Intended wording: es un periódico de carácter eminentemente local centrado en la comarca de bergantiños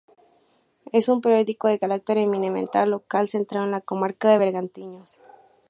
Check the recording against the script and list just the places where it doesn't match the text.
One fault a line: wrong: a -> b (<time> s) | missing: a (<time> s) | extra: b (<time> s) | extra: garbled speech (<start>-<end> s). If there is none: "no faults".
no faults